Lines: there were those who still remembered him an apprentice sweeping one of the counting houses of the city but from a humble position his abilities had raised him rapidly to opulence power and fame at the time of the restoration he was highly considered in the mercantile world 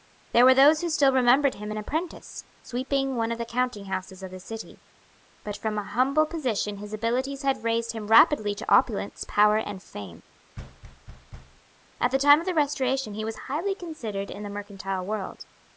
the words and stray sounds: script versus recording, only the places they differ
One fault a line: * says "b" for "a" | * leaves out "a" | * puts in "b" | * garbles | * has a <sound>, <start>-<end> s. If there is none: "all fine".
* has a thud, 10.6-11.6 s